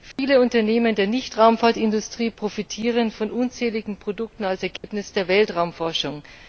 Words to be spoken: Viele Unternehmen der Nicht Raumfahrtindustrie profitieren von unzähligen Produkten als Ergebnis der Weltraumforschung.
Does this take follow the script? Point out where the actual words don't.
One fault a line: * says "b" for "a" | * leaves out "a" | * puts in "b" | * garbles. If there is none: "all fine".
all fine